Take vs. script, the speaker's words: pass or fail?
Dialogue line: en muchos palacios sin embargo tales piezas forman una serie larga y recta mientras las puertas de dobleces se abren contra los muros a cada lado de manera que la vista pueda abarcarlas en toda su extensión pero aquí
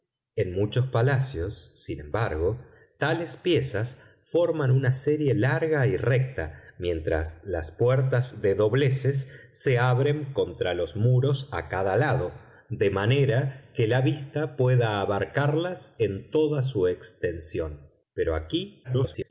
fail